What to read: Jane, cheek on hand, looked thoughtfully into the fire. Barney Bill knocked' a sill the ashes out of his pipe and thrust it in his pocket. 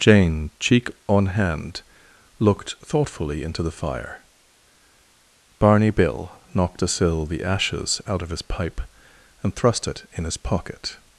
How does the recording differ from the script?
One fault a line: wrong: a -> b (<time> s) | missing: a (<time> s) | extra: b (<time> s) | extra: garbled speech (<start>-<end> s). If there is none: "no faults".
no faults